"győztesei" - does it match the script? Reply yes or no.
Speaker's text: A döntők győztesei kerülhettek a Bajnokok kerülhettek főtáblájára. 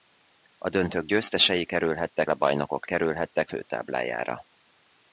yes